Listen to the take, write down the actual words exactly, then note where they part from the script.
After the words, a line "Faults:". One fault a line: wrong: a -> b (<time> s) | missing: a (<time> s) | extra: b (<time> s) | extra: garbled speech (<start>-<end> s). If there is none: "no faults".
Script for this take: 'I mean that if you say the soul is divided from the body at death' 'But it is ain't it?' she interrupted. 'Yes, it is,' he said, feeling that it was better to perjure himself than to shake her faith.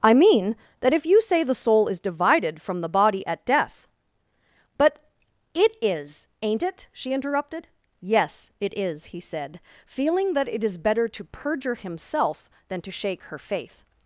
'I mean that if you say the soul is divided from the body at death' 'But it is ain't it?' she interrupted. 'Yes, it is,' he said, feeling that it is better to perjure himself than to shake her faith.
Faults:
wrong: was -> is (10.6 s)